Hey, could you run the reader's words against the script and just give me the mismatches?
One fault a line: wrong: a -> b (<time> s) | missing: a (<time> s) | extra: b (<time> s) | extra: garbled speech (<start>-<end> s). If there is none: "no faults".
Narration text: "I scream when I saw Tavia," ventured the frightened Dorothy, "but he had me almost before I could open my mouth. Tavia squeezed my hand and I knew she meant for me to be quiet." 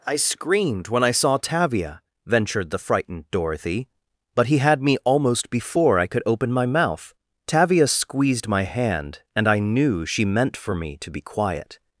wrong: scream -> screamed (0.1 s)